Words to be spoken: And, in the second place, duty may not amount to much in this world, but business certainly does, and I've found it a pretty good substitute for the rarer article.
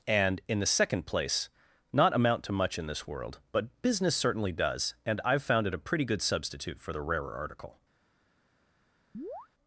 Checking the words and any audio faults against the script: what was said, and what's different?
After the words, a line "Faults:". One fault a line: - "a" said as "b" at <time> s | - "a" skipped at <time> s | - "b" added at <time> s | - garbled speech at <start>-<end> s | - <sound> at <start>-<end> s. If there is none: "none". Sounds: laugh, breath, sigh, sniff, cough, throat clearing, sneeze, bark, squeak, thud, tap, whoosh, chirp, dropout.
And, in the second place, not amount to much in this world, but business certainly does, and I've found it a pretty good substitute for the rarer article.
Faults:
- "duty may" skipped at 1.5 s
- chirp at 9.1-9.5 s